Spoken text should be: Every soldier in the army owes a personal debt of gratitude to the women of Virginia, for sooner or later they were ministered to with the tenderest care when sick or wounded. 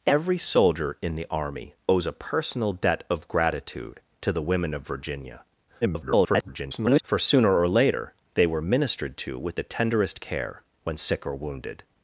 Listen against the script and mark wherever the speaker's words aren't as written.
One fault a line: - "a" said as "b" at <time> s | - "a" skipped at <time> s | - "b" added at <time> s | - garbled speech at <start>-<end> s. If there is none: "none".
- garbled speech at 5.8-7.0 s